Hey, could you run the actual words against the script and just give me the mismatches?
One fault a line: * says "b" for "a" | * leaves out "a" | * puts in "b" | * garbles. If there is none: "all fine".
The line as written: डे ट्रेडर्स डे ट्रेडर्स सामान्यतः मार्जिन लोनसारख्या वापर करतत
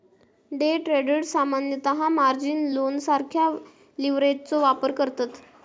* leaves out "डे ट्रेडर्स"
* puts in "लीव्हरेजचो"